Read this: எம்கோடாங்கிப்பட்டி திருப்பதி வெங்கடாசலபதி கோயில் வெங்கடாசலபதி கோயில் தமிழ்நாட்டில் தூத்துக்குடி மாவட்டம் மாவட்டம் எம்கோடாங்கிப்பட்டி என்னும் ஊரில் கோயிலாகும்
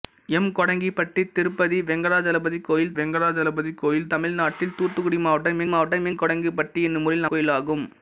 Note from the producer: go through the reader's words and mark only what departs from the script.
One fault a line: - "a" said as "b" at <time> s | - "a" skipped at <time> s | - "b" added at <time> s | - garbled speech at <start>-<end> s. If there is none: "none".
none